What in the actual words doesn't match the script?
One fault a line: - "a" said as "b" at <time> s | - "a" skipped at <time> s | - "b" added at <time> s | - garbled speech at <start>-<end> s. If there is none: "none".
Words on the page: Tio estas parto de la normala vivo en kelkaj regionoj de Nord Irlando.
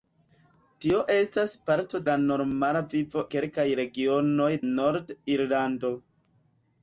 - "de" skipped at 2.0 s
- "en" skipped at 3.2 s
- "de" skipped at 4.5 s